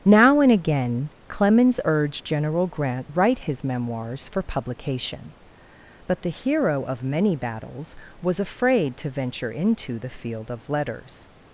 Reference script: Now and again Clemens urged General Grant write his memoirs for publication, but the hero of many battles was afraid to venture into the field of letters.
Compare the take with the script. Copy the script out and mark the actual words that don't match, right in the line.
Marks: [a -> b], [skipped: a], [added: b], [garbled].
Now and again Clemens urged General Grant write his memoirs for publication, but the hero of many battles was afraid to venture into the field of letters.